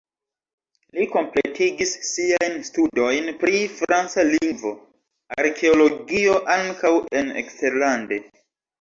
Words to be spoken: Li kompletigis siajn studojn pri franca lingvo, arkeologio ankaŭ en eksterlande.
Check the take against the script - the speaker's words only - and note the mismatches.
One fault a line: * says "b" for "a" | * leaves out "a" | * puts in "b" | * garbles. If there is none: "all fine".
all fine